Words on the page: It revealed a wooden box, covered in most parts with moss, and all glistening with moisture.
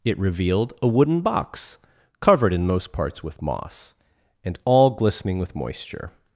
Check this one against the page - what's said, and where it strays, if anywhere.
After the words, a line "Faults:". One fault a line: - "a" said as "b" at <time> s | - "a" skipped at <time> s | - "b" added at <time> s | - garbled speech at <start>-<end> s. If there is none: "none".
It revealed a wooden box, covered in most parts with moss, and all glistening with moisture.
Faults:
none